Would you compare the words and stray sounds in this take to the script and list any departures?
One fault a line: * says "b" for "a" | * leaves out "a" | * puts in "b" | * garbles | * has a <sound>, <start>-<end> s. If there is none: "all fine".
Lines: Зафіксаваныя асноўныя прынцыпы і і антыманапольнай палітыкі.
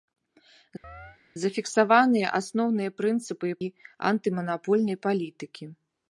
* has a chirp, 0.8-1.2 s